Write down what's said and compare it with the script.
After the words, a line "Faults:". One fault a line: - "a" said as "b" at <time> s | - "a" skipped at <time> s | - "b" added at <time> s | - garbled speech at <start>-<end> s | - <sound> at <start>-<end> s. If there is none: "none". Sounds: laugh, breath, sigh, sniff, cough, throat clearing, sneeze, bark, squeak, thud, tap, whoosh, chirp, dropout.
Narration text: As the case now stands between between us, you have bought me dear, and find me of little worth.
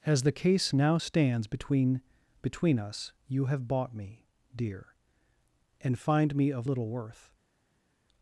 As the case now stands between between us, you have bought me dear, and find me of little worth.
Faults:
none